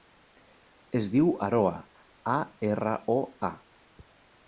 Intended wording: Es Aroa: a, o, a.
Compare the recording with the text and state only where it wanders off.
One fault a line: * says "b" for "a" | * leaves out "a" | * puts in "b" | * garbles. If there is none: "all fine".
* puts in "diu"
* puts in "erra"